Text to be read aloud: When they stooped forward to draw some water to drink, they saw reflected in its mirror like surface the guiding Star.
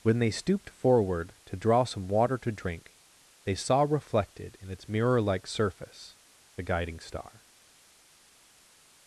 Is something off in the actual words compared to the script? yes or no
no